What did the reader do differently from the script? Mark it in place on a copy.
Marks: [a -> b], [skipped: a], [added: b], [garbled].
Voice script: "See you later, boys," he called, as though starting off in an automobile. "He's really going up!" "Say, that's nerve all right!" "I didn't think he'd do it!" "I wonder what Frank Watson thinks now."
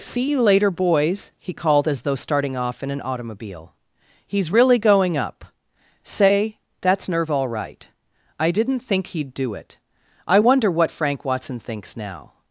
"See you later, boys," he called, as though starting off in an automobile. "He's really going up!" "Say, that's nerve all right!" "I didn't think he'd do it!" "I wonder what Frank Watson thinks now."